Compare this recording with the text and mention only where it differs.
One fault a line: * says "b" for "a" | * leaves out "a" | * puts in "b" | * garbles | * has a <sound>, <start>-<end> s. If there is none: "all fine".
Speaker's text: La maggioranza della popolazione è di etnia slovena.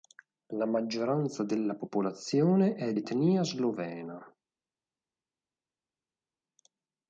* leaves out "di"